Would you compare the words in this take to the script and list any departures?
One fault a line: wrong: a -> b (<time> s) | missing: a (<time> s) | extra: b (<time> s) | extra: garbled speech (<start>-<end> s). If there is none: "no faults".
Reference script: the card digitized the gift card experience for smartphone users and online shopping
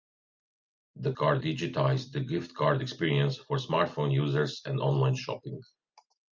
no faults